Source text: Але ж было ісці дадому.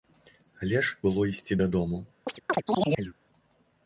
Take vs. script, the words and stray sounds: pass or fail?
fail